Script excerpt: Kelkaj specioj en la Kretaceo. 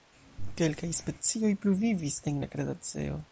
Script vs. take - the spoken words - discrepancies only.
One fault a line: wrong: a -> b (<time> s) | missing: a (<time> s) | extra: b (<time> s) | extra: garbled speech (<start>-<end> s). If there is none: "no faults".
extra: pluvivis (1.6 s)